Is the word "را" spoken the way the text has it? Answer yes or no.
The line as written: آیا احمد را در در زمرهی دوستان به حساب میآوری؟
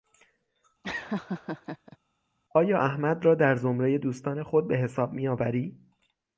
yes